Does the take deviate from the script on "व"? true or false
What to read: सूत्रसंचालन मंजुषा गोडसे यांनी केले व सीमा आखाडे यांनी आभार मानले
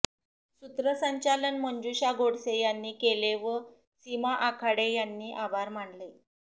false